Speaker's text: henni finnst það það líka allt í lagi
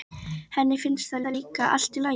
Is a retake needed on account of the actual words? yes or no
no